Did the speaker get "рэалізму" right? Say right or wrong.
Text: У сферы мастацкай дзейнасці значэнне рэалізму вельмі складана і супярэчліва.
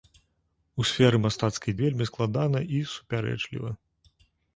wrong